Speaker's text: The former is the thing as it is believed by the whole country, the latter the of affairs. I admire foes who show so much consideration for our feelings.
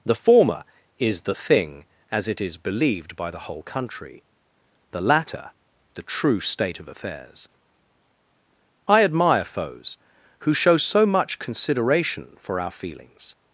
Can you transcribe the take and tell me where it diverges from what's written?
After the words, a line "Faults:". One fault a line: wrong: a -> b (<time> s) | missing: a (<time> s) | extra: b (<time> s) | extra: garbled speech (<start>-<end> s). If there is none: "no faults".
The former is the thing as it is believed by the whole country, the latter the true state of affairs. I admire foes who show so much consideration for our feelings.
Faults:
extra: true state (6.0 s)